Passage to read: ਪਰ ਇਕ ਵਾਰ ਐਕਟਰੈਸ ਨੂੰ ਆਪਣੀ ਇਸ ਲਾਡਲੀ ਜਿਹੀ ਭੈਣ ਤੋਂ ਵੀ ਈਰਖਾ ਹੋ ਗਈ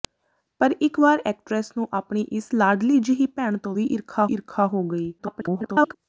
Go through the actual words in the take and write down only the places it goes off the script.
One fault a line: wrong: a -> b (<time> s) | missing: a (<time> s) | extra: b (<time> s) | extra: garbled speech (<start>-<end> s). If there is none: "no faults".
extra: ਈਰਖਾ (4.2 s)
extra: garbled speech (5.2-5.9 s)